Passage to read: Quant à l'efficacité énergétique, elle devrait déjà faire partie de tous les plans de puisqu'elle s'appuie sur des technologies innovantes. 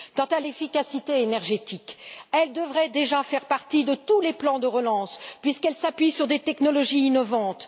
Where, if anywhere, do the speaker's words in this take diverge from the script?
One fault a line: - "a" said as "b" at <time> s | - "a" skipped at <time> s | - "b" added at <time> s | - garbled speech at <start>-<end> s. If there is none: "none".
- "relance" added at 4.7 s